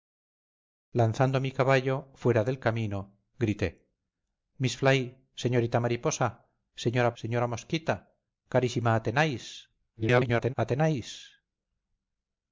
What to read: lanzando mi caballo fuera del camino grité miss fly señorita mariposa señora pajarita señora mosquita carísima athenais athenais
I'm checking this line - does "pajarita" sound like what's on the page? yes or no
no